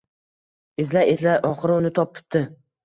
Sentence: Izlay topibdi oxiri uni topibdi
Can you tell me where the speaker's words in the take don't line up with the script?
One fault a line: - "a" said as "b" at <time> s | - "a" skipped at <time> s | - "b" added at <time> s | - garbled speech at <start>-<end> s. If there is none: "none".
- "topibdi" said as "izlay" at 1.1 s